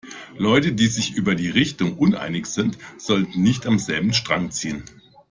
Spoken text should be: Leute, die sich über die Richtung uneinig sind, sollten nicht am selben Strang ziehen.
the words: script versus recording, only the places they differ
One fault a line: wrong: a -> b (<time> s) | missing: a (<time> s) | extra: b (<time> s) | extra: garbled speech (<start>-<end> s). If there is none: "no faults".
no faults